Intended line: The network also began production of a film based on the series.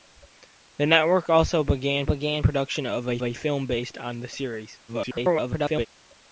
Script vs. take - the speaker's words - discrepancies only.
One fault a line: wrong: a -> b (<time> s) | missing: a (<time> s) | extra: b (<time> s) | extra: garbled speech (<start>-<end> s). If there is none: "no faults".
extra: began (2.0 s)
extra: a (3.2 s)
extra: garbled speech (4.9-5.9 s)